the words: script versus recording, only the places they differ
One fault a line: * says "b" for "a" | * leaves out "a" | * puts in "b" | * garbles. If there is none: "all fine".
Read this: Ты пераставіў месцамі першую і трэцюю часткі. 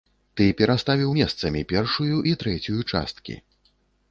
all fine